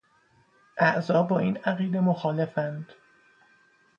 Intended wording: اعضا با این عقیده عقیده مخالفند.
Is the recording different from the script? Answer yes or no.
yes